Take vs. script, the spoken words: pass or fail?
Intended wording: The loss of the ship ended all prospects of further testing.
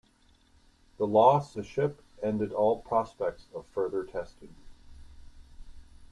fail